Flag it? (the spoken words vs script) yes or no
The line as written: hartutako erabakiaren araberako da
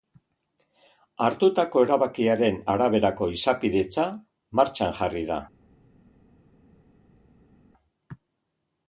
yes